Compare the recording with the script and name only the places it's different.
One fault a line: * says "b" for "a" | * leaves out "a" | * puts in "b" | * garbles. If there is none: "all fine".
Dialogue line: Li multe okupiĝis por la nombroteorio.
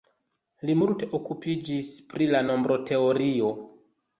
* says "pri" for "por"